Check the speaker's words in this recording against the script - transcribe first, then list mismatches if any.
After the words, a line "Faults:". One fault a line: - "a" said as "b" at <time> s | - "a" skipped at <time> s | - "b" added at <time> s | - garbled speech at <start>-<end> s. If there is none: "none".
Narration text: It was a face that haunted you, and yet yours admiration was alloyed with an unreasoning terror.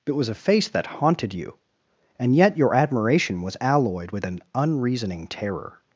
It was a face that haunted you, and yet your admiration was alloyed with an unreasoning terror.
Faults:
- "yours" said as "your" at 2.6 s